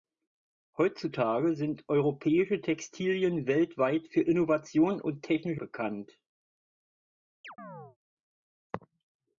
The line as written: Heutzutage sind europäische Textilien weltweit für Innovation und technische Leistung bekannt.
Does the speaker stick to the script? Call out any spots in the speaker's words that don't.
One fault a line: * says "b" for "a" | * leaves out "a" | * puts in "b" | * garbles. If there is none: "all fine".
* leaves out "Leistung"